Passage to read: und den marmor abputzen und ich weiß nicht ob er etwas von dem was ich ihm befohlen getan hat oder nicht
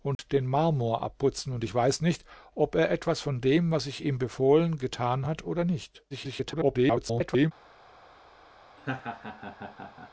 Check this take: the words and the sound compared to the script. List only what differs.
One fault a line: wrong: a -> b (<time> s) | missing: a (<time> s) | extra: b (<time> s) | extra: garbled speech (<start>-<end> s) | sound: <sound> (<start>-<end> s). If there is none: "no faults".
sound: dropout (0.1-0.2 s)
extra: garbled speech (6.1-7.5 s)
sound: laugh (8.8-10.1 s)